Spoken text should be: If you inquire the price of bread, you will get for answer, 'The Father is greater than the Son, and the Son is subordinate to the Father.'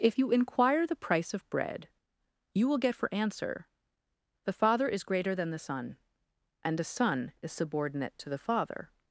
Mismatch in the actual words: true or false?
false